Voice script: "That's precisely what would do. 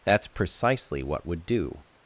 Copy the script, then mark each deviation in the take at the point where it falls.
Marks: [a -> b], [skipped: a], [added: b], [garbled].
"That's precisely what would do.